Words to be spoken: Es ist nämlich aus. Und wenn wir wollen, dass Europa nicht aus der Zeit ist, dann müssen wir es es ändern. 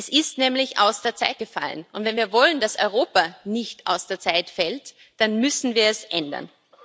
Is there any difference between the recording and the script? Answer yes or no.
yes